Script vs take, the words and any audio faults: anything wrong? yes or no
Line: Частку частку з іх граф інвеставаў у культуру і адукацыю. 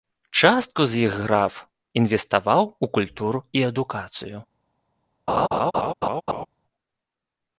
yes